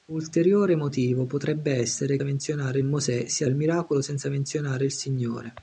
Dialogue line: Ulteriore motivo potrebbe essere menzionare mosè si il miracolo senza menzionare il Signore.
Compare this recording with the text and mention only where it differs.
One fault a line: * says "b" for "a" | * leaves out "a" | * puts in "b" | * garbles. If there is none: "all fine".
all fine